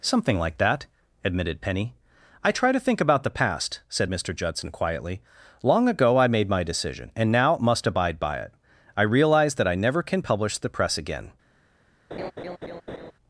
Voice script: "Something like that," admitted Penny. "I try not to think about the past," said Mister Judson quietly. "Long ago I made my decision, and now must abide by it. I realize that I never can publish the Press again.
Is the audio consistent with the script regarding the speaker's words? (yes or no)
no